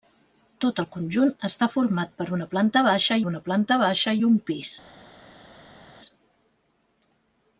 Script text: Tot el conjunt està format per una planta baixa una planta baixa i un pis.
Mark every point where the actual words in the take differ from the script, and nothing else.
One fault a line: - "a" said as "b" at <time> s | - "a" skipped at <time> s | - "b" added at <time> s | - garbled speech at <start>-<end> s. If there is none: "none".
none